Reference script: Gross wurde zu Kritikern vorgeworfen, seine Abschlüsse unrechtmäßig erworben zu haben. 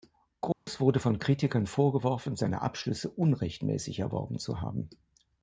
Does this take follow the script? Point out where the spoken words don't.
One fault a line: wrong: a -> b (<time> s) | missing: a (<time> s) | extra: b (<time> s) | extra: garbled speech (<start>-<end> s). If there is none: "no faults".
wrong: zu -> von (1.0 s)